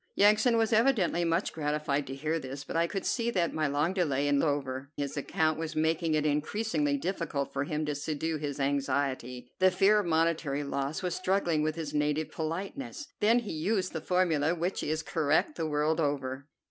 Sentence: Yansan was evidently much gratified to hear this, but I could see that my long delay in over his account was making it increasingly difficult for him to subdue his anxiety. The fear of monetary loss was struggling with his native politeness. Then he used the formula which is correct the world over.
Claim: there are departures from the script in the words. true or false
false